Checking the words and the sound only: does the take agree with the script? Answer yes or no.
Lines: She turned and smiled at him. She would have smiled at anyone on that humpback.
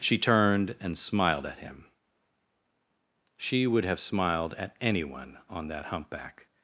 yes